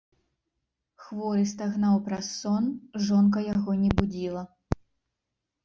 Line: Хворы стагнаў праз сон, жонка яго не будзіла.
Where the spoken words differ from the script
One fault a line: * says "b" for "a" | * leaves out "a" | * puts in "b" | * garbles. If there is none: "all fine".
all fine